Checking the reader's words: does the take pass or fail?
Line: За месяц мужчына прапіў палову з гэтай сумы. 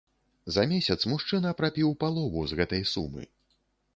pass